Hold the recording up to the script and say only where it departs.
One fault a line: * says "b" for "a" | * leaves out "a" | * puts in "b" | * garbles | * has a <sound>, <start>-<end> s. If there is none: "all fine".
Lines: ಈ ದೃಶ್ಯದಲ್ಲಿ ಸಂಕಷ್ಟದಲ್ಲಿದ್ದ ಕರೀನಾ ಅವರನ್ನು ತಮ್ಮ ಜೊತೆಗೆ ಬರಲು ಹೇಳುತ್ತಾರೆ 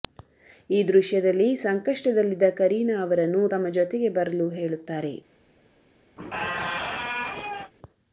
* has a squeak, 6.2-7.7 s